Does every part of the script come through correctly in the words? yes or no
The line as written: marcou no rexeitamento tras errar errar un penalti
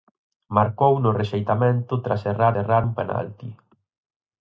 yes